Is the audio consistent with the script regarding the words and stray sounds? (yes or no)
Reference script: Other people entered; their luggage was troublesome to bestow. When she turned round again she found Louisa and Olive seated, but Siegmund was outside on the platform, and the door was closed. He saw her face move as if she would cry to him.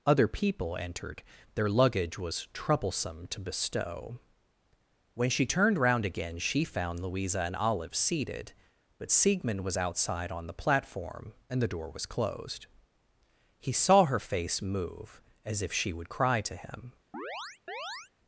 no